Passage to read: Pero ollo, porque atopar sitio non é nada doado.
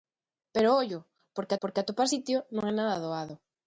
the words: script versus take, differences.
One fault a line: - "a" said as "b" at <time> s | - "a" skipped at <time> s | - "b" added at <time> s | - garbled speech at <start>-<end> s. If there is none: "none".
- "porque" added at 1.6 s